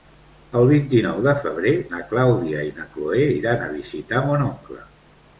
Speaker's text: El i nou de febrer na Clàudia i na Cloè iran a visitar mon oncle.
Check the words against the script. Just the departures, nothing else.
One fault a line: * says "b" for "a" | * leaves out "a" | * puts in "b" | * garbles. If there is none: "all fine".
* puts in "vint"